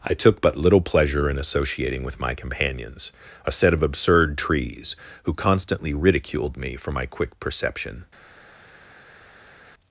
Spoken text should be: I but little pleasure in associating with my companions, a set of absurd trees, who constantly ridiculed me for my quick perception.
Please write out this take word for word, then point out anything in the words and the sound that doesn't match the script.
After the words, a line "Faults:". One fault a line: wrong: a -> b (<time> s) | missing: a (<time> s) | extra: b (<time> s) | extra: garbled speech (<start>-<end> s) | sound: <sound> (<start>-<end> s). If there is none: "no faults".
I took but little pleasure in associating with my companions, a set of absurd trees, who constantly ridiculed me for my quick perception.
Faults:
extra: took (0.1 s)